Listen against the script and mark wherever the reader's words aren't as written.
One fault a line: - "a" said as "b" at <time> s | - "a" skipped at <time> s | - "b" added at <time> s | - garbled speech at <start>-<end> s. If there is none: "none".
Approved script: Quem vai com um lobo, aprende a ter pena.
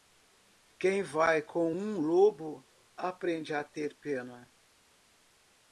none